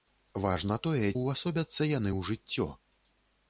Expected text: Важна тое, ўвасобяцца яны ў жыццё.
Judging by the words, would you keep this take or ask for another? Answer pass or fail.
pass